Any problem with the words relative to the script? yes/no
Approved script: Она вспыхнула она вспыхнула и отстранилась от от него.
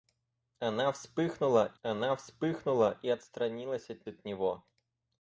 no